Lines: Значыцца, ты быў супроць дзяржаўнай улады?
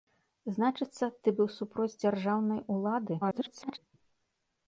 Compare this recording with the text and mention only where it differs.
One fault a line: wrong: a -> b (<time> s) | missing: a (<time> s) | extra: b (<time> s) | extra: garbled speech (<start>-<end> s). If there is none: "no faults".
extra: garbled speech (3.2-3.8 s)